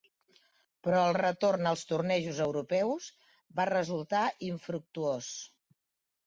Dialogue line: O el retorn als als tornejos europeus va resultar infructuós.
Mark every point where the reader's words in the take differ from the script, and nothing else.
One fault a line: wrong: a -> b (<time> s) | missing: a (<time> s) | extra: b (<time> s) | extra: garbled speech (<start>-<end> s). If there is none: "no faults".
wrong: O -> Però (0.8 s)
missing: als (1.8 s)